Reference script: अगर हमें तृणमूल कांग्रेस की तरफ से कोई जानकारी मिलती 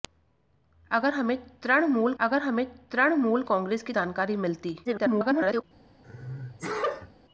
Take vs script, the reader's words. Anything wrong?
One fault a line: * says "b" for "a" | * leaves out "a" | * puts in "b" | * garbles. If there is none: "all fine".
* says "अगर हमें तृणमूल कांग्रेस की" for "कांग्रेस की तरफ से कोई"
* garbles